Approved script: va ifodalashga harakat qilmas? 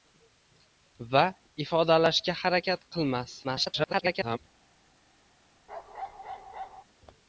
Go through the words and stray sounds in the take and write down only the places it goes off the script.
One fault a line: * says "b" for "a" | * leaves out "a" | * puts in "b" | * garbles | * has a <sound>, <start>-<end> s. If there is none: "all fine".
* garbles
* has a bark, 5.7-6.8 s